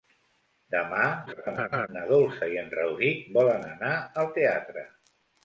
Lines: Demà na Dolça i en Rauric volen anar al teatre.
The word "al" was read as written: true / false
true